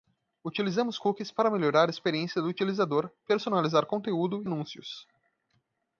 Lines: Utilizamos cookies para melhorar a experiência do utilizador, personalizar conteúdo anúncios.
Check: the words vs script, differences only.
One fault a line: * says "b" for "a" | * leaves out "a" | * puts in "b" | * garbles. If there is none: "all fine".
all fine